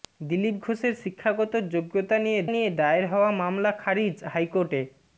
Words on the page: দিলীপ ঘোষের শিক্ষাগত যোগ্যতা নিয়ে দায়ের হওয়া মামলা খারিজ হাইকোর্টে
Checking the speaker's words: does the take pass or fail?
fail